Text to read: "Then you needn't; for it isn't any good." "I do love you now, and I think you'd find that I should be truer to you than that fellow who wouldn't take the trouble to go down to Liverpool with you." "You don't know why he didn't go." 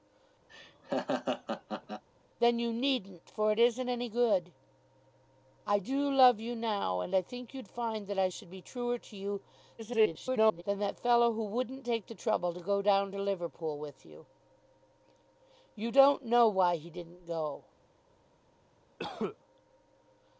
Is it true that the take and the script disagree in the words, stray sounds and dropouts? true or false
true